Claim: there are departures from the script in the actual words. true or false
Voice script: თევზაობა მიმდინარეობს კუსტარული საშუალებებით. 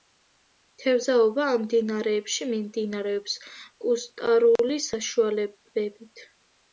true